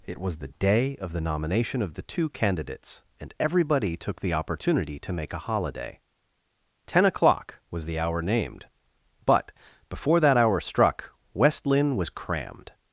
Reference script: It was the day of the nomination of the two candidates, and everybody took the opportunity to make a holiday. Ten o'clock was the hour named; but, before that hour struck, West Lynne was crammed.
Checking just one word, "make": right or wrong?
right